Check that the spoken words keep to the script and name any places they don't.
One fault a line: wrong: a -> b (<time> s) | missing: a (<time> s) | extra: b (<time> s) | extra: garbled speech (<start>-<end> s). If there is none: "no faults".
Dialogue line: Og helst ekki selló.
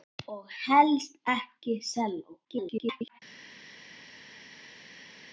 extra: garbled speech (2.4-3.2 s)